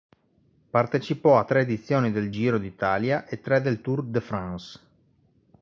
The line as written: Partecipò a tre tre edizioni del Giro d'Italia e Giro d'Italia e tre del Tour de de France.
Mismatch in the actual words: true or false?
true